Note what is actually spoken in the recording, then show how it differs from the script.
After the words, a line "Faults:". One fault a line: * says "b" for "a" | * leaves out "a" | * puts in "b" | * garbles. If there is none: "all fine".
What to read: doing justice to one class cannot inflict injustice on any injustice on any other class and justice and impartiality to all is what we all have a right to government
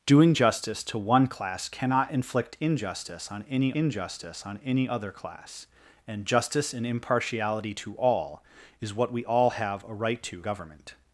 doing justice to one class cannot inflict injustice on any injustice on any other class and justice and impartiality to all is what we all have a right to government
Faults:
all fine